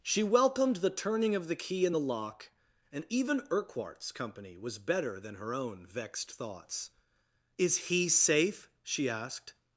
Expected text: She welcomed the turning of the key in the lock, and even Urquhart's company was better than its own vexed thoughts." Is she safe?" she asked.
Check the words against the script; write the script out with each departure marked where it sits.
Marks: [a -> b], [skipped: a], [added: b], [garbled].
She welcomed the turning of the key in the lock, and even Urquhart's company was better than [its -> her] own vexed thoughts." Is [she -> he] safe?" she asked.